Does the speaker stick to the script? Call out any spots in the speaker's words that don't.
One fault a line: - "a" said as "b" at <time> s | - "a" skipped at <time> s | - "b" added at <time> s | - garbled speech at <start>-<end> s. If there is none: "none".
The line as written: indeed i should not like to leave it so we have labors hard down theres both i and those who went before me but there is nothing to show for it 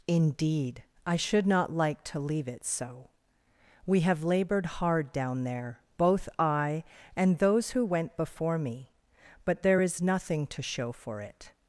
- "labors" said as "labored" at 4.2 s
- "theres" said as "there" at 5.4 s